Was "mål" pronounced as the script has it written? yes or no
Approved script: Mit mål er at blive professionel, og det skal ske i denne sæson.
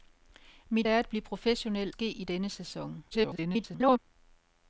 no